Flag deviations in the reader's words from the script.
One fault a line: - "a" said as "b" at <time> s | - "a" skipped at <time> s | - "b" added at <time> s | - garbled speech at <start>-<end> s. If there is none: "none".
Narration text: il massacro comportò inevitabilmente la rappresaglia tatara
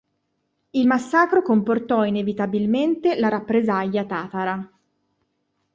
none